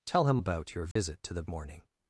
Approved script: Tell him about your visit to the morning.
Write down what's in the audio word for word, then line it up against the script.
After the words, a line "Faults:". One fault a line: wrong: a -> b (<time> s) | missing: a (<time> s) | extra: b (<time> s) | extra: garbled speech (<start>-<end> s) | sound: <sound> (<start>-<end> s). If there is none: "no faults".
Tell him about your visit to the morning.
Faults:
sound: dropout (0.9-1.0 s)